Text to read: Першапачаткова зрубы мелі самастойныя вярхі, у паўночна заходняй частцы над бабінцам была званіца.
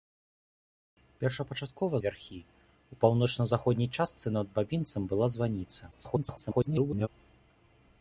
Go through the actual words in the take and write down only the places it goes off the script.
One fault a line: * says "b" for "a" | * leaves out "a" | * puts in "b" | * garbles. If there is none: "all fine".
* leaves out "зрубы мелі самастойныя"
* garbles